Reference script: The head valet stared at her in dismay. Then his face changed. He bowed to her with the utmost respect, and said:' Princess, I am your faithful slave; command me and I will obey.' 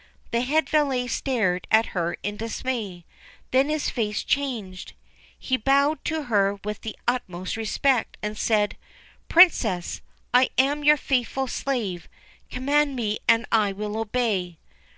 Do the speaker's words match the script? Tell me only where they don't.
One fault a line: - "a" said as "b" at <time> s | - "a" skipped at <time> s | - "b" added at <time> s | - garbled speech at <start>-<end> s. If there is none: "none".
none